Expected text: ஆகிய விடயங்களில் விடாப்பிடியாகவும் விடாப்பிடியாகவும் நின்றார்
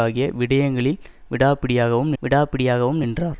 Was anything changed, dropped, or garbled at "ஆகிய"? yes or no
no